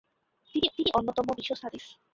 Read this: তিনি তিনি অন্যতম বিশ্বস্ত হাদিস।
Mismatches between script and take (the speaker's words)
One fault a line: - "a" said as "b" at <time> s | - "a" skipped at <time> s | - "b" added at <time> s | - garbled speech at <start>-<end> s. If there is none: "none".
none